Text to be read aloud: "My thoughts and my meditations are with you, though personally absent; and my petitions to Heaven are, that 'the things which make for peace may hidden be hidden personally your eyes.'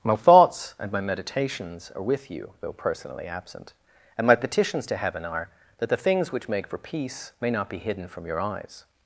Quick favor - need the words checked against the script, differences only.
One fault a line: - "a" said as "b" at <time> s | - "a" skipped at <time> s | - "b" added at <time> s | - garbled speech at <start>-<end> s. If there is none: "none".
- "hidden" said as "not" at 7.5 s
- "personally" said as "from" at 8.1 s